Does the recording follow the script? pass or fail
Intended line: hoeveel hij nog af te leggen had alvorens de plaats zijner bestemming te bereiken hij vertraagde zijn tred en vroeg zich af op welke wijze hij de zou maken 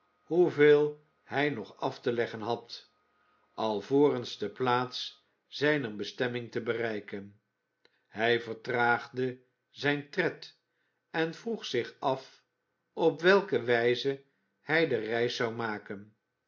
fail